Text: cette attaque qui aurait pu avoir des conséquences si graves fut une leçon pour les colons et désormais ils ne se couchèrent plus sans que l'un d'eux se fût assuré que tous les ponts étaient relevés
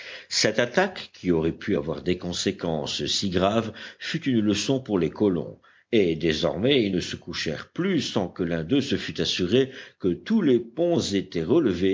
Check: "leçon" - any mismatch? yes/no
no